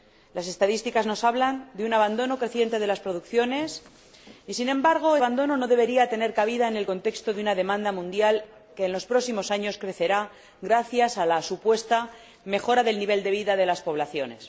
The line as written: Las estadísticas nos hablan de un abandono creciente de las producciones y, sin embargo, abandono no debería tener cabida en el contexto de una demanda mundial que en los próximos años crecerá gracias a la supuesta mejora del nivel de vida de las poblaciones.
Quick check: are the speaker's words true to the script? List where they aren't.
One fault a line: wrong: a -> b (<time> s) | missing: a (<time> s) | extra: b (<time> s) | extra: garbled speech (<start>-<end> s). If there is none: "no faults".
no faults